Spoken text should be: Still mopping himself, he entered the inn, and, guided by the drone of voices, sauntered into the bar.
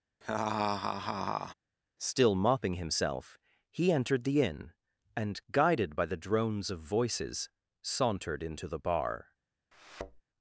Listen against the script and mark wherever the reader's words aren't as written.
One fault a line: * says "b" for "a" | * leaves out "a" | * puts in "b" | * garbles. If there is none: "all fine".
* says "drones" for "drone"